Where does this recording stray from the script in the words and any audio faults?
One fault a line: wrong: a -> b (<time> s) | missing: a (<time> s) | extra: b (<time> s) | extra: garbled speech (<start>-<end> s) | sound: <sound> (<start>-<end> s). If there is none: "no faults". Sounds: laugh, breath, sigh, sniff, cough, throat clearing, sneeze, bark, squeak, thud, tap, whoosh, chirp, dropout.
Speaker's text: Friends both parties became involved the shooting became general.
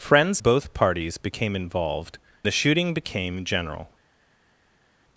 no faults